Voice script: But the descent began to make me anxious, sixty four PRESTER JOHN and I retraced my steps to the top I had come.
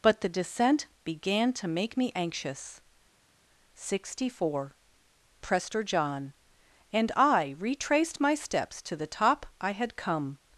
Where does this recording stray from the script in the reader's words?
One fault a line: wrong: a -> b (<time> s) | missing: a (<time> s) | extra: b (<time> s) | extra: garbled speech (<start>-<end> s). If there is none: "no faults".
no faults